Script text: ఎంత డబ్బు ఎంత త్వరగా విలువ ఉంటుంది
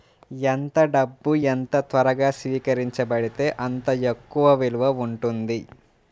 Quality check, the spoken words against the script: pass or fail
fail